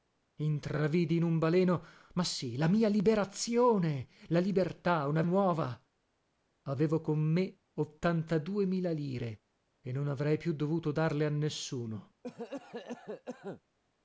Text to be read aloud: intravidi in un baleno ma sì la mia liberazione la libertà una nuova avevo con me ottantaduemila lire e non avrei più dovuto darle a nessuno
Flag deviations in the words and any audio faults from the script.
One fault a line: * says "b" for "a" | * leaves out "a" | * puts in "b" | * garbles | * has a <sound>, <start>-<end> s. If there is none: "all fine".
* has a cough, 12.2-13.6 s